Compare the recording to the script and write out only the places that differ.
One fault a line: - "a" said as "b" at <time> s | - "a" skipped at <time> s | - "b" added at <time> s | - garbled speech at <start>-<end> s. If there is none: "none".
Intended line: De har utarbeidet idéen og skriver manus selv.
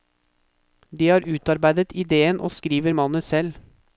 none